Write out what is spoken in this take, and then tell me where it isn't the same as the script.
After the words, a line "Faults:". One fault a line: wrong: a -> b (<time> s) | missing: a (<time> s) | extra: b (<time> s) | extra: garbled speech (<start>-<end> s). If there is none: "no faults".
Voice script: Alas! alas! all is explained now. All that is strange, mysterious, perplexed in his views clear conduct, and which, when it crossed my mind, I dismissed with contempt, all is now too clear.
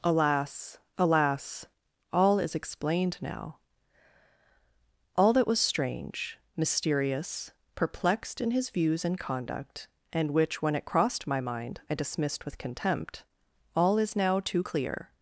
Alas! alas! all is explained now. All that was strange, mysterious, perplexed in his views and conduct, and which, when it crossed my mind, I dismissed with contempt, all is now too clear.
Faults:
wrong: is -> was (5.5 s)
wrong: clear -> and (9.1 s)